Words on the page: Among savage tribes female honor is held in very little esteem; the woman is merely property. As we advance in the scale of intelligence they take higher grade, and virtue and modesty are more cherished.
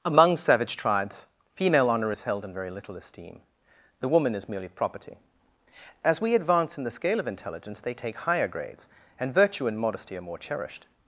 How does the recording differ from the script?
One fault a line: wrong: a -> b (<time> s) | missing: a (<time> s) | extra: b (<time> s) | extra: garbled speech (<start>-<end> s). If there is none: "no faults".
wrong: grade -> grades (8.5 s)